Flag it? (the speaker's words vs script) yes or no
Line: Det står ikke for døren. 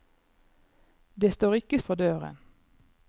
no